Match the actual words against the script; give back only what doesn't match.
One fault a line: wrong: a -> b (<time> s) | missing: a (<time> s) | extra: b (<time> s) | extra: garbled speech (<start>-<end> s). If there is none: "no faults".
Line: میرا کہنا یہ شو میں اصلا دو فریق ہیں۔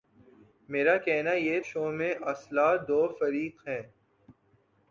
no faults